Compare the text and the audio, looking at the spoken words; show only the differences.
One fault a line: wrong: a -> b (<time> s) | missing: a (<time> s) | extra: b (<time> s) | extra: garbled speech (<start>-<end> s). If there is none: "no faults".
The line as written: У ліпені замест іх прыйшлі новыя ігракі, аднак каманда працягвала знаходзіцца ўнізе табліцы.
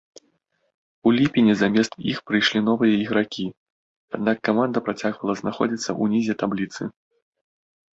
no faults